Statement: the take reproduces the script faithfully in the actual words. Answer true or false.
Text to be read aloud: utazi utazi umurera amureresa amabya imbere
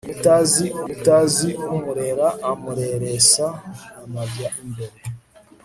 true